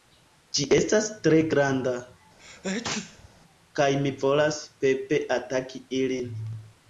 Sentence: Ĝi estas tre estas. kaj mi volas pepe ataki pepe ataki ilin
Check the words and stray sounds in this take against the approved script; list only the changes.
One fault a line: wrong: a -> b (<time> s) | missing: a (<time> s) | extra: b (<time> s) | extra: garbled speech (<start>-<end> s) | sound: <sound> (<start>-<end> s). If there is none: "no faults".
wrong: estas -> granda (1.5 s)
sound: sneeze (2.4-3.3 s)
missing: pepe ataki (5.9 s)